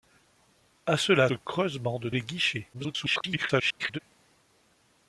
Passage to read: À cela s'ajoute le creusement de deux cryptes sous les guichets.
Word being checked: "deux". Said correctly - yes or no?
no